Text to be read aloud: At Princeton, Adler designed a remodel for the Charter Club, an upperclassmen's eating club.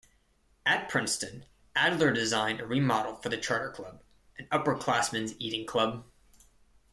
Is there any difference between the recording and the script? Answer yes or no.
no